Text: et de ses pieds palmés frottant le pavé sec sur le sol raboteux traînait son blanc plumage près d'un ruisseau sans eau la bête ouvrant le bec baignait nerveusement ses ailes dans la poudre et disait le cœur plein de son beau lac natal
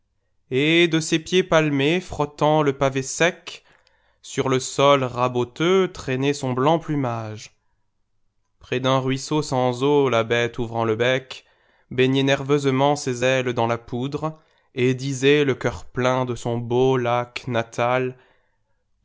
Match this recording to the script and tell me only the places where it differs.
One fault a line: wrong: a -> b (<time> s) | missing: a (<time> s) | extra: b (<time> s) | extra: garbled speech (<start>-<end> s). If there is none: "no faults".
no faults